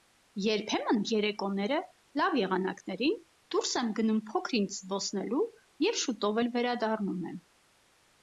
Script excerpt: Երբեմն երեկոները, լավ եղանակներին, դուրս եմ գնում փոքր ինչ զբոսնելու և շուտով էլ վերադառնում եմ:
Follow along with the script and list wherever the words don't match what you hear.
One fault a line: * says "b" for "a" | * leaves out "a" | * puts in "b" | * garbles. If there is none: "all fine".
all fine